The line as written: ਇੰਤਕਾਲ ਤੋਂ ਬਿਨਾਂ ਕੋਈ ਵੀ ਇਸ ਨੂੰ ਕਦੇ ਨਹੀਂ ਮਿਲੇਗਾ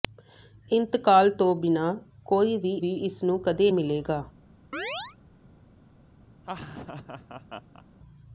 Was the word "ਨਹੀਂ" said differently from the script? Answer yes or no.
yes